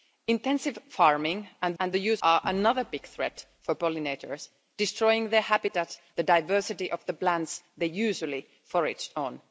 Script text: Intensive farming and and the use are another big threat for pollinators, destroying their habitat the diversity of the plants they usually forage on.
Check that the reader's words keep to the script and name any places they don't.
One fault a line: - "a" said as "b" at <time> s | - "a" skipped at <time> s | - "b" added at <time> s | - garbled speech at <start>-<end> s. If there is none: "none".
none